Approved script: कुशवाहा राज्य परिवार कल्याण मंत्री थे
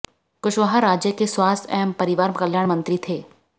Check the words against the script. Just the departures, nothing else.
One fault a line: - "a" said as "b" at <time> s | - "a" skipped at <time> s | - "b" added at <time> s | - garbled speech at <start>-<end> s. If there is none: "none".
- "के स्वास्थ्य एवं" added at 1.1 s